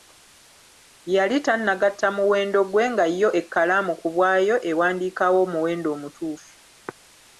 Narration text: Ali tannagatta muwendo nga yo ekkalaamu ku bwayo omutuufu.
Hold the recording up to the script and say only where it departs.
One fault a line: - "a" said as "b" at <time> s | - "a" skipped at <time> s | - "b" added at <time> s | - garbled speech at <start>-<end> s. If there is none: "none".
- "Ali" said as "Yali" at 1.1 s
- "gwe" added at 2.7 s
- "ewandiikawo omuwendo" added at 4.7 s